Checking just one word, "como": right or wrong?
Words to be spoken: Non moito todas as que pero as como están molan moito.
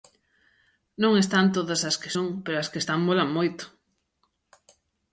wrong